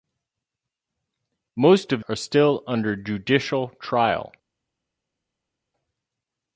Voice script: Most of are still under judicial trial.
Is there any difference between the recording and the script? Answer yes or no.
no